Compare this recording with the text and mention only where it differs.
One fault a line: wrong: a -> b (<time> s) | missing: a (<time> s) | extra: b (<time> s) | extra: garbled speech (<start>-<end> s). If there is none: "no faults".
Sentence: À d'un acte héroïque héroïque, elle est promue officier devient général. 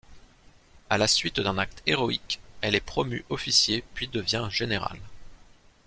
extra: la suite (1.0 s)
missing: héroïque (2.4 s)
extra: puis (3.9 s)